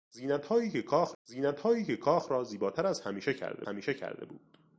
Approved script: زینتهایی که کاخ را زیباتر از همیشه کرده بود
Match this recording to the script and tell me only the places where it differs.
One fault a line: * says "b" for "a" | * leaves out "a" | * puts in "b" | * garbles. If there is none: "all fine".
* puts in "زینتهایی که کاخ"
* puts in "همیشه کرده"